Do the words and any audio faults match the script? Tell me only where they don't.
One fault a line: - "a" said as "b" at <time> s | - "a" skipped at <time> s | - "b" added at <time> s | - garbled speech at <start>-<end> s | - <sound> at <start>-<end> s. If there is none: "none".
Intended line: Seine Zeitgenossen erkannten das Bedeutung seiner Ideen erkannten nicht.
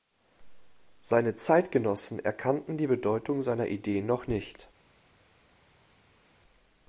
- "das" said as "die" at 2.8 s
- "erkannten" said as "noch" at 4.1 s